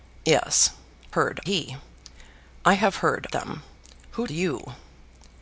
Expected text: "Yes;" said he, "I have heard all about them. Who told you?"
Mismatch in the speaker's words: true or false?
true